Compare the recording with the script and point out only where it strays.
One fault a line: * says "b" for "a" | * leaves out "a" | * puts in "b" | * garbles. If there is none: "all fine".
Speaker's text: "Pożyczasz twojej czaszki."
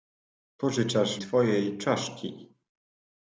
all fine